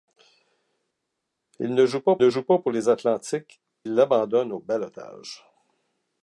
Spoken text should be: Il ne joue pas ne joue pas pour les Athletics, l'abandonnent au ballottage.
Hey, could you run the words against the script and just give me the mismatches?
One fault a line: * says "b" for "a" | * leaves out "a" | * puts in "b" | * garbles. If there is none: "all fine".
all fine